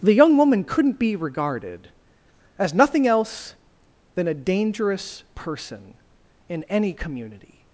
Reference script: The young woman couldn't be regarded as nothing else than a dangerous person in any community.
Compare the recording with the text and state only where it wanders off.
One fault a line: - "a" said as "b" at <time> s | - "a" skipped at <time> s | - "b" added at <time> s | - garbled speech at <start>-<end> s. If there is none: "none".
none